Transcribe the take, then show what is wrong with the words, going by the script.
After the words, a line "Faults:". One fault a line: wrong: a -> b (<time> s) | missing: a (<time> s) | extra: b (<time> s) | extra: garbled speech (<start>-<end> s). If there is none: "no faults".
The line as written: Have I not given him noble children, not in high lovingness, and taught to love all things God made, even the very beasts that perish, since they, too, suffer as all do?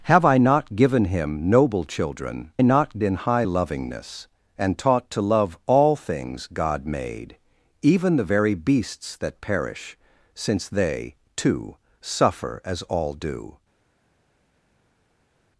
Have I not given him noble children, not in high lovingness, and taught to love all things God made, even the very beasts that perish, since they, too, suffer as all do?
Faults:
no faults